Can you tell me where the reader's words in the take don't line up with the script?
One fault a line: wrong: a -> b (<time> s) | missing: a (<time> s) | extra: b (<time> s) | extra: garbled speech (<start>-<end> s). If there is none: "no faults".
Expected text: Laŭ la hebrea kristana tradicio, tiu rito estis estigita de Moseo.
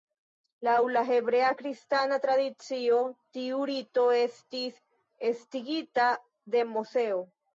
no faults